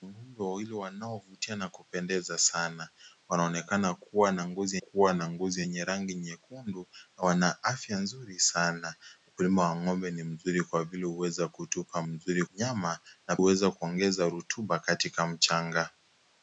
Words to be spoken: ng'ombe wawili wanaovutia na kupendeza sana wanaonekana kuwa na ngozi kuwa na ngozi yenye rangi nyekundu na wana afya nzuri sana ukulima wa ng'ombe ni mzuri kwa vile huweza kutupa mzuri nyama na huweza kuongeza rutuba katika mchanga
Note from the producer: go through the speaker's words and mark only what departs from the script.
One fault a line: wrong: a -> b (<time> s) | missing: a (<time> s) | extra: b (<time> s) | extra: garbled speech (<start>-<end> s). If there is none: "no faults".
no faults